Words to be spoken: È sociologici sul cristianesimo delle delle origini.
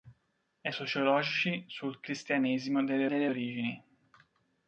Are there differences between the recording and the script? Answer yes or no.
no